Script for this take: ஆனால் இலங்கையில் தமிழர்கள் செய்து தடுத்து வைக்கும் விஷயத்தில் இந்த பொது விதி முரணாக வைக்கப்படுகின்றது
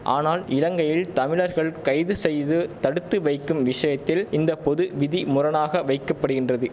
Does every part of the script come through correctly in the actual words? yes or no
no